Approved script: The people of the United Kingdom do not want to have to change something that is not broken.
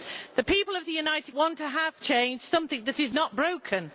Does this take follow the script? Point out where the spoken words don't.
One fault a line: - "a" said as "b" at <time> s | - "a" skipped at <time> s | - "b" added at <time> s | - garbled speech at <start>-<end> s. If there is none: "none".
- "Kingdom do not" skipped at 1.4 s
- "to" skipped at 2.0 s